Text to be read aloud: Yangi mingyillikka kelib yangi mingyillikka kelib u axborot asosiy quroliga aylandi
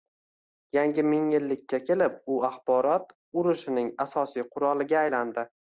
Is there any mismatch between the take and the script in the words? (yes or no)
yes